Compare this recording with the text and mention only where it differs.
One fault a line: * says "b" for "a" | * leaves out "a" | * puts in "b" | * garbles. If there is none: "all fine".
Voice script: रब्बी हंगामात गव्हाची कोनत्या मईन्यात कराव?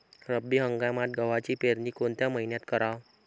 * puts in "पेरनी"